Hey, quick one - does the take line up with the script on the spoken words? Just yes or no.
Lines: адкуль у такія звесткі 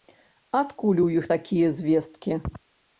no